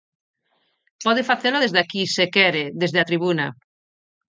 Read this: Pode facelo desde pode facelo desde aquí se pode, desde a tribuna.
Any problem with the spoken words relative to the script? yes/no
yes